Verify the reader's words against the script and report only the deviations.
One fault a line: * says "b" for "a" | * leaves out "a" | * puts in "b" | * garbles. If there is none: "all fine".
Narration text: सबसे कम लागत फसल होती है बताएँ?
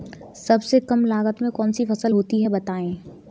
* puts in "में कौन सी"